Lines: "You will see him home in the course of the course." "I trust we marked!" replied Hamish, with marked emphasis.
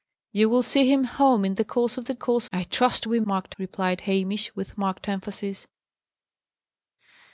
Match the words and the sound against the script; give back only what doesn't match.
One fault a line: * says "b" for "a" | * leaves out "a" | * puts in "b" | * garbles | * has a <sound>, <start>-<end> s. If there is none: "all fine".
all fine